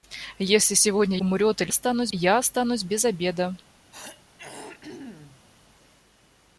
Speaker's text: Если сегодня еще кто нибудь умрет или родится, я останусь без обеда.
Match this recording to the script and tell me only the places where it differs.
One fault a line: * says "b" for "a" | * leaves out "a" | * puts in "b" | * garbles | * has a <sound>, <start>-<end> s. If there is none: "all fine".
* leaves out "еще кто нибудь"
* says "останусь" for "родится"
* has a throat clearing, 3.9-5.5 s